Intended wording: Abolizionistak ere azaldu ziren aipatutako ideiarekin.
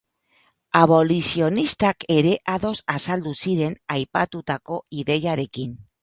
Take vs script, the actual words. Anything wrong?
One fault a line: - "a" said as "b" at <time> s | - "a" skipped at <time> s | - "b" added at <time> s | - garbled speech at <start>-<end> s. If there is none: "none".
- "ados" added at 2.5 s